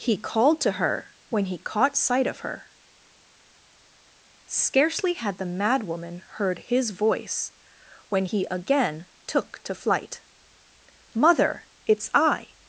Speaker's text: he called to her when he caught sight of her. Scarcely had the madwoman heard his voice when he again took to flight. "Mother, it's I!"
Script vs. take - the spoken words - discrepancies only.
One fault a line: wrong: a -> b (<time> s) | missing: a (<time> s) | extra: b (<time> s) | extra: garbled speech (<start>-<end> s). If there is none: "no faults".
no faults